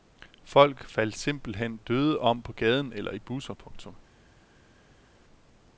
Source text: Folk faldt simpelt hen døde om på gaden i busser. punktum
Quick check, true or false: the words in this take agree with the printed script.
false